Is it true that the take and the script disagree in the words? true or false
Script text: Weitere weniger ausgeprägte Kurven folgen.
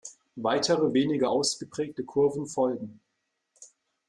false